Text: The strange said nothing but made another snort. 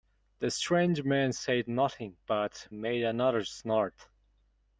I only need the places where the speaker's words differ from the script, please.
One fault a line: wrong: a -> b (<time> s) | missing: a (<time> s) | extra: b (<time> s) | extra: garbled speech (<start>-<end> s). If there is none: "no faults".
extra: man (1.0 s)